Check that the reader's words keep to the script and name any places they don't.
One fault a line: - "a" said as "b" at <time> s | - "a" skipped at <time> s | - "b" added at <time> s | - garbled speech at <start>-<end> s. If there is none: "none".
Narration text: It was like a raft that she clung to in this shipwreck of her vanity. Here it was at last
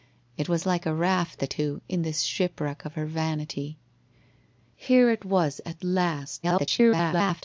- "she clung" skipped at 1.5 s
- garbled speech at 6.4-7.4 s